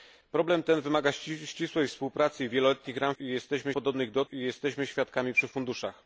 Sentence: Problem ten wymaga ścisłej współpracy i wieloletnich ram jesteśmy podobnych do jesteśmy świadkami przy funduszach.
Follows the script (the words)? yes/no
yes